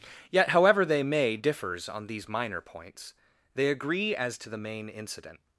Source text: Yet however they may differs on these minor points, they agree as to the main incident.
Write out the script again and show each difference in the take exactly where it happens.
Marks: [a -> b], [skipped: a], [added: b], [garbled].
Yet however they may differs on these minor points, they agree as to the main incident.